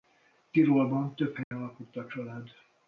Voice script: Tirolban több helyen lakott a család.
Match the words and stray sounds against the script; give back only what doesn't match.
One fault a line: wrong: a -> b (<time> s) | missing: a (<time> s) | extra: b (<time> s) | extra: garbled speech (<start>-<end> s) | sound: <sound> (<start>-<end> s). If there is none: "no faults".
sound: dropout (1.4-1.5 s)